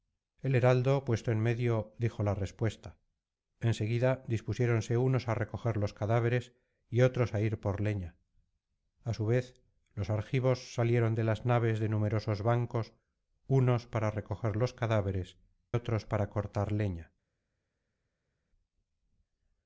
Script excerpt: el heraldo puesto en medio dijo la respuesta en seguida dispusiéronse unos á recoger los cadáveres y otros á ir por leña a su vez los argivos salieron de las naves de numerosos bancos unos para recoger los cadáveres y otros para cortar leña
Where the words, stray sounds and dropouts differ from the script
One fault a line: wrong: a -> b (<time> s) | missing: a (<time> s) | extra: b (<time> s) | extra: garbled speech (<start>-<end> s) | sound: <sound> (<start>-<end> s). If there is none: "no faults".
missing: y (15.4 s)